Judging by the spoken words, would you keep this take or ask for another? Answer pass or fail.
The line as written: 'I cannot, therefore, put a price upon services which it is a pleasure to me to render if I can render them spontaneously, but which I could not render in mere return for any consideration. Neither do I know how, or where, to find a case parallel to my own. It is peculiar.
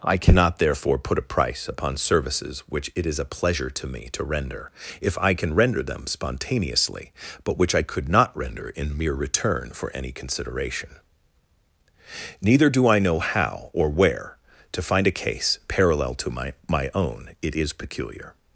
fail